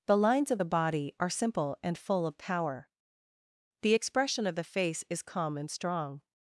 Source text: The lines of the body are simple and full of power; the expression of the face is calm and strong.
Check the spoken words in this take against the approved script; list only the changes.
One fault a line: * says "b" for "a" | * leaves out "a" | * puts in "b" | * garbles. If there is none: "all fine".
all fine